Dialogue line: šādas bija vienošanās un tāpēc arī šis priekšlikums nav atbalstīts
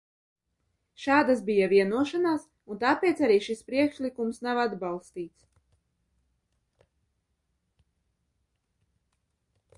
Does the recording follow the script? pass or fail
pass